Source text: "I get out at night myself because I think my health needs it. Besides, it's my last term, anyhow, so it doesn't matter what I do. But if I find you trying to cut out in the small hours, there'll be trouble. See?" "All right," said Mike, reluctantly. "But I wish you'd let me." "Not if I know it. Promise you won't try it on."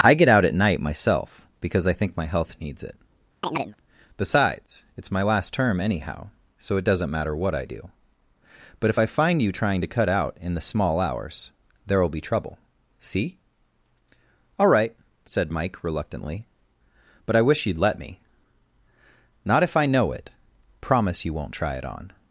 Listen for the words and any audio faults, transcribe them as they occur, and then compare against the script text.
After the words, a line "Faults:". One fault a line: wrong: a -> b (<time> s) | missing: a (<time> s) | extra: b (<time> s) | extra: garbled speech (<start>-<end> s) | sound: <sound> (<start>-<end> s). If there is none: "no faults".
"I get out at night myself because I think my health needs it. Besides, it's my last term, anyhow, so it doesn't matter what I do. But if I find you trying to cut out in the small hours, there'll be trouble. See?" "All right," said Mike, reluctantly. "But I wish you'd let me." "Not if I know it. Promise you won't try it on."
Faults:
sound: chirp (3.4-3.8 s)